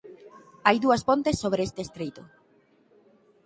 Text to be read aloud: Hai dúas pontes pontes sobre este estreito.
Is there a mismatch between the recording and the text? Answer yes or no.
yes